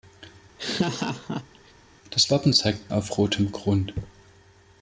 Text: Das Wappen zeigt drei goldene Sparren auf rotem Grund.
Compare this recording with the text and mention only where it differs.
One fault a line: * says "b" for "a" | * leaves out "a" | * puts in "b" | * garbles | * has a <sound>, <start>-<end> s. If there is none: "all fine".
* has a laugh, 0.6-1.7 s
* leaves out "drei goldene Sparren"